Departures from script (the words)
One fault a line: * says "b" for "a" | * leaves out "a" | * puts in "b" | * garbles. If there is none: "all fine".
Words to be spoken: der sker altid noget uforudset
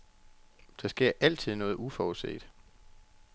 all fine